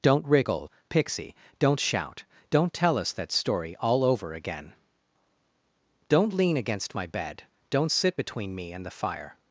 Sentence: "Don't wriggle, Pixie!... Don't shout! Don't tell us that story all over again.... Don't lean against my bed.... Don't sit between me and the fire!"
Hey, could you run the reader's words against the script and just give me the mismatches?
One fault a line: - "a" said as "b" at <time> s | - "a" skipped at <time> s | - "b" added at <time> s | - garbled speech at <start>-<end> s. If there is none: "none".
none